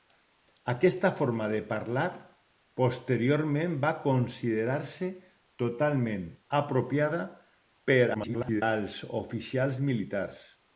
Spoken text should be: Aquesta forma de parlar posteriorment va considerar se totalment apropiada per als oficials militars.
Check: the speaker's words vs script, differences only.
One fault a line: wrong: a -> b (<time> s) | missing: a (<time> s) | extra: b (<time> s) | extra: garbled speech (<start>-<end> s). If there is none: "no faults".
extra: garbled speech (8.1-8.6 s)